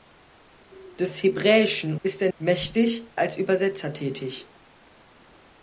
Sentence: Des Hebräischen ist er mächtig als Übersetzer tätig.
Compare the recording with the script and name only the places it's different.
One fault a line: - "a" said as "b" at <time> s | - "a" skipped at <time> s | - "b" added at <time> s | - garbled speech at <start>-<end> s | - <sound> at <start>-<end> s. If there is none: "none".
none